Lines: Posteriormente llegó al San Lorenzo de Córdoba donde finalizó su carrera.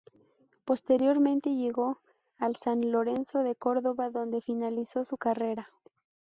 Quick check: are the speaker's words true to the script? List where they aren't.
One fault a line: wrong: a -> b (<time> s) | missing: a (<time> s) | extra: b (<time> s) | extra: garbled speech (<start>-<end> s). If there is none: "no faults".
no faults